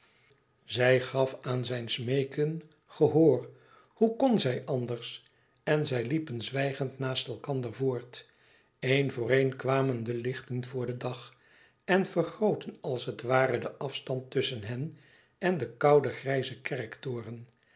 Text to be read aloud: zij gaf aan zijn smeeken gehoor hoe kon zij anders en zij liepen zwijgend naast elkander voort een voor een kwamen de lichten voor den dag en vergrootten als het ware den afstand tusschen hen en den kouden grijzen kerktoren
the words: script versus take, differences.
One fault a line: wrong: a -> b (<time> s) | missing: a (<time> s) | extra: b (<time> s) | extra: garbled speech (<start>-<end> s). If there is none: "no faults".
no faults